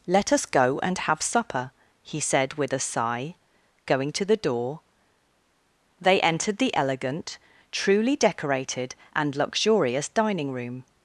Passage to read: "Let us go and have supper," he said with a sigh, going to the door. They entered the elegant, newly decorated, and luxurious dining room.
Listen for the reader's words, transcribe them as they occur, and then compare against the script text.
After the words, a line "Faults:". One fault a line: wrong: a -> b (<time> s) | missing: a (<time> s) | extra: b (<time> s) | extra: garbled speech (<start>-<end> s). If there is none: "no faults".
"Let us go and have supper," he said with a sigh, going to the door. They entered the elegant, truly decorated, and luxurious dining room.
Faults:
wrong: newly -> truly (7.7 s)